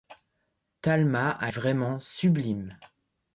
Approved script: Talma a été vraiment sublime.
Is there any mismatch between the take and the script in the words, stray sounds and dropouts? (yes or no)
yes